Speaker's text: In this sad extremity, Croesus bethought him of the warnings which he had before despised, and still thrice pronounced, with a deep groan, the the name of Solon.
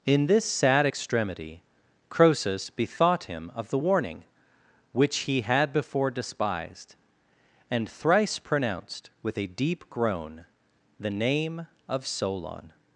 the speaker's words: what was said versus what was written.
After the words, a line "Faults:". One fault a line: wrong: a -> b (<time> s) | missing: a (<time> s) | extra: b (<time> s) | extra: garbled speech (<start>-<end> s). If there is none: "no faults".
In this sad extremity, Croesus bethought him of the warning which he had before despised, and thrice pronounced, with a deep groan, the name of Solon.
Faults:
wrong: warnings -> warning (3.8 s)
missing: still (7.9 s)
missing: the (11.1 s)